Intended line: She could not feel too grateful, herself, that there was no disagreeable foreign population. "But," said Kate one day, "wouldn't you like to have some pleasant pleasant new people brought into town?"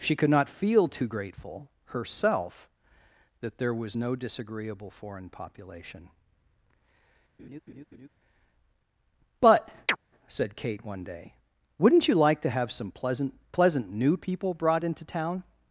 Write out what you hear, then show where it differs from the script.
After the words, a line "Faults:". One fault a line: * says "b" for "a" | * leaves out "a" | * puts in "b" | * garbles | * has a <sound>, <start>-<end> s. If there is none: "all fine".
She could not feel too grateful, herself, that there was no disagreeable foreign population. "But," said Kate one day, "wouldn't you like to have some pleasant pleasant new people brought into town?"
Faults:
* has a laugh, 7.4-8.1 s
* has a chirp, 9.9-10.0 s